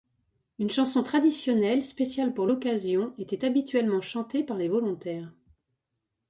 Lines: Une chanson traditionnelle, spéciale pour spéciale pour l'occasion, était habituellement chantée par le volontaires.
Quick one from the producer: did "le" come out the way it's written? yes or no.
no